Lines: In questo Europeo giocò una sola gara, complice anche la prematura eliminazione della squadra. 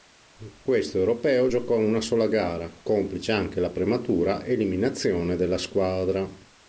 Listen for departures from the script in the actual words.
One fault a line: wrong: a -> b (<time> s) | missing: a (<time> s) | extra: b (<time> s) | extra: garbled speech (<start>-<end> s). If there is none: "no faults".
no faults